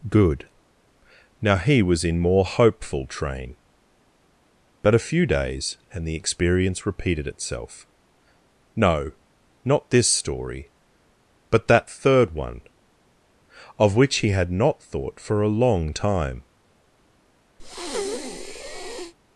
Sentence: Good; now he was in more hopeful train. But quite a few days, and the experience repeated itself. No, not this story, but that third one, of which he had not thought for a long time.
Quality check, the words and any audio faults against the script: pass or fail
fail